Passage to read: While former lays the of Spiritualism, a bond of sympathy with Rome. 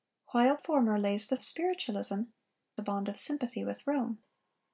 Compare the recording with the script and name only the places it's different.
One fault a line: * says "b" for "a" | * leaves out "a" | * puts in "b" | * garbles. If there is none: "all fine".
all fine